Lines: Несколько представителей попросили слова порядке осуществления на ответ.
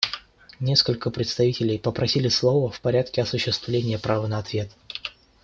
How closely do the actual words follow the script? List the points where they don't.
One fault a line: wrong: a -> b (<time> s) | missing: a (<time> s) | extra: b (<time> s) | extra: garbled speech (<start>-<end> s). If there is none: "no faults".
extra: в (2.7 s)
extra: права (4.0 s)